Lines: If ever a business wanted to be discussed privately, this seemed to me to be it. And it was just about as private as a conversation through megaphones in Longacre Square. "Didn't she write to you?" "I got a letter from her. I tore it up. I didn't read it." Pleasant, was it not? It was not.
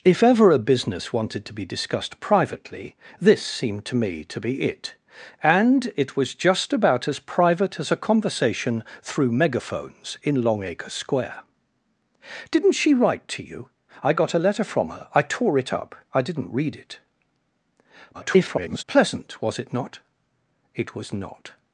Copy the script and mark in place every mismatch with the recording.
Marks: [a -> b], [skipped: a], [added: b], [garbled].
If ever a business wanted to be discussed privately, this seemed to me to be it. And it was just about as private as a conversation through megaphones in Longacre Square. "Didn't she write to you?" "I got a letter from her. I tore it up. I didn't read it." [garbled] Pleasant, was it not? It was not.